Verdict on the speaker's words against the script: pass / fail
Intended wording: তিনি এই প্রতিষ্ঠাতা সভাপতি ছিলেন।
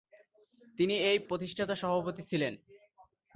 pass